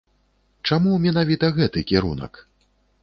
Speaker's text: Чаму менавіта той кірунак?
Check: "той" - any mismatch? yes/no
yes